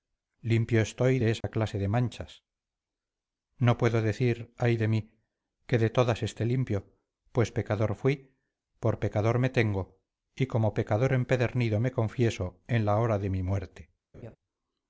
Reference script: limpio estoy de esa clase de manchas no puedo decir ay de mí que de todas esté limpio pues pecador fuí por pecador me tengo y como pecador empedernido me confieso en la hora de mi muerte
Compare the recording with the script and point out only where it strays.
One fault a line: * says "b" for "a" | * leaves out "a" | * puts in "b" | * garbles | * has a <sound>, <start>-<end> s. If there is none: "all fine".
* has a dropout, 1.4-1.4 s
* has a laugh, 14.1-14.4 s